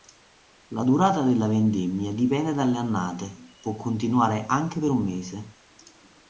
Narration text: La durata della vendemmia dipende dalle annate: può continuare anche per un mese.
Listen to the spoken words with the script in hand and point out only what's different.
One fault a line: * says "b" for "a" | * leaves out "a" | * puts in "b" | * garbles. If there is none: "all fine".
all fine